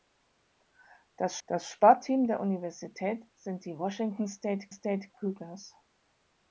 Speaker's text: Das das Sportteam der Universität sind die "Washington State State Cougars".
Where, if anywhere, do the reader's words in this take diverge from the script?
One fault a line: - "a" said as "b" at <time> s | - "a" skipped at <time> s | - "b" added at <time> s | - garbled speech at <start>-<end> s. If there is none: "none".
none